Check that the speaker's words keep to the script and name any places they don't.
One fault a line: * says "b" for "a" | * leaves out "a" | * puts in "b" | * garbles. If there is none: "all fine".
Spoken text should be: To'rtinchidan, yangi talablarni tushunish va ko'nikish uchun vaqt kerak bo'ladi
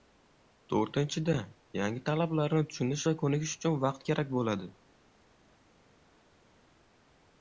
all fine